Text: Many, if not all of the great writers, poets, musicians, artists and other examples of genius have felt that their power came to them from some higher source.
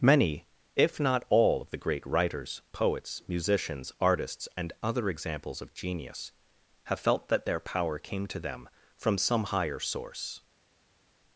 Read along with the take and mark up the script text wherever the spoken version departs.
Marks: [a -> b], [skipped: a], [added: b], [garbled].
Many, if not all of the great writers, poets, musicians, artists and other examples of genius have felt that their power came to them from some higher source.